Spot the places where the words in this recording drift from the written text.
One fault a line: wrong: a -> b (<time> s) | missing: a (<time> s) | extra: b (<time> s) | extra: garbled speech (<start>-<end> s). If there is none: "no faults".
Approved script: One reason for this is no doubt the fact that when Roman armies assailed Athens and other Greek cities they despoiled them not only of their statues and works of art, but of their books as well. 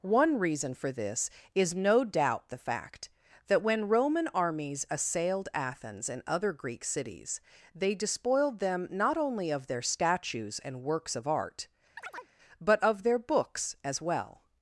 no faults